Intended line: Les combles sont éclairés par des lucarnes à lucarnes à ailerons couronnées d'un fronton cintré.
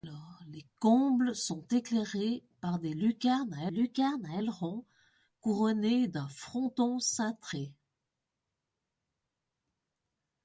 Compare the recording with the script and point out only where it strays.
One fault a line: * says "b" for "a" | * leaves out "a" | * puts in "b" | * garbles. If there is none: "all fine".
all fine